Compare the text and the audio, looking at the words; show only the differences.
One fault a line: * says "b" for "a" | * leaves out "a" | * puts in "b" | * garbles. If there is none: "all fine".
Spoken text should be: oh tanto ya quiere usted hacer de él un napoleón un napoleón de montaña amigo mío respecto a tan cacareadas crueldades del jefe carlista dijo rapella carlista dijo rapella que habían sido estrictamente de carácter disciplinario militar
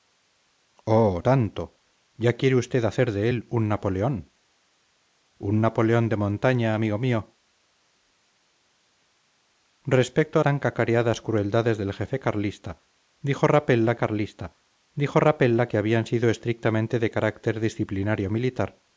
all fine